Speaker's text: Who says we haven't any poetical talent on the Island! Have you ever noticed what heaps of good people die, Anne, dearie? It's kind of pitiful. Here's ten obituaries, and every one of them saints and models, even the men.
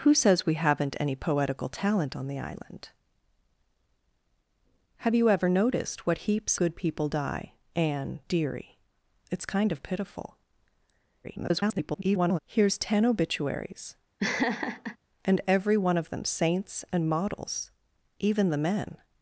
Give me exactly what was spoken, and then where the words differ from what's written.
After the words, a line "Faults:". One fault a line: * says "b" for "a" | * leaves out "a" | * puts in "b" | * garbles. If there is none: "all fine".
Who says we haven't any poetical talent on the Island! Have you ever noticed what heaps good people die, Anne, dearie? It's kind of pitiful. [garbled] Here's ten obituaries, and every one of them saints and models, even the men.
Faults:
* leaves out "of"
* garbles